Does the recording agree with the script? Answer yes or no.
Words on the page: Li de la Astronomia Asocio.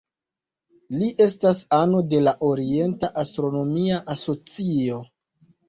no